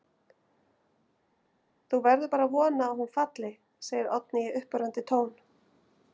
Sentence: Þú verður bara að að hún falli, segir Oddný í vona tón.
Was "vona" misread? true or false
true